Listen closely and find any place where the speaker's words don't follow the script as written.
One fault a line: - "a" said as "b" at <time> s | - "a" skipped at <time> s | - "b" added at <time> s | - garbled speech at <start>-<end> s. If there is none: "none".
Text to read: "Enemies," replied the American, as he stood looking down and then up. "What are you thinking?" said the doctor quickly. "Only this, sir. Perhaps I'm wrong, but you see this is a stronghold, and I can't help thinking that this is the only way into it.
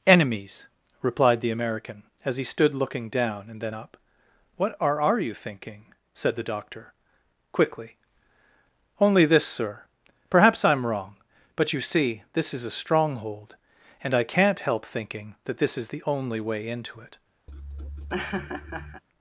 - "are" added at 5.0 s